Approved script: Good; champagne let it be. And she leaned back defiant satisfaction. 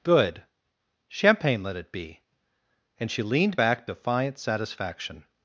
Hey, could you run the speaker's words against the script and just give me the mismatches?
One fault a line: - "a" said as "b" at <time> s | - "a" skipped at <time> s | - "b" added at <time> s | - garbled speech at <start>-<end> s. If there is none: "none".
none